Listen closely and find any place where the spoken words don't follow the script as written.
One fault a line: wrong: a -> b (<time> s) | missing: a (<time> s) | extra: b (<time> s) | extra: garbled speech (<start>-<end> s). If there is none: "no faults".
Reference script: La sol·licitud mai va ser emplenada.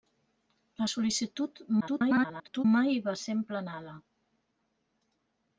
extra: garbled speech (1.8-2.6 s)